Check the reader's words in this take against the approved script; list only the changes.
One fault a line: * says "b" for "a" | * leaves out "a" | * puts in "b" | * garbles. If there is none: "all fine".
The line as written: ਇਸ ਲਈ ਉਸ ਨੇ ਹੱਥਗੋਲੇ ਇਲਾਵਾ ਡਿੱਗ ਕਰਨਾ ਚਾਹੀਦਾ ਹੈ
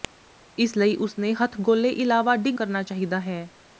all fine